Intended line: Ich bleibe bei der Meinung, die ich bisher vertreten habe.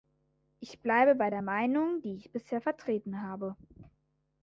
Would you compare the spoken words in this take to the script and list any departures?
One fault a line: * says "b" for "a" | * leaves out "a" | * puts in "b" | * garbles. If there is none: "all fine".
all fine